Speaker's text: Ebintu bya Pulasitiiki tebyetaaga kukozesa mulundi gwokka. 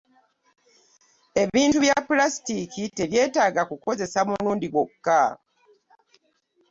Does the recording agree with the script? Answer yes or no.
yes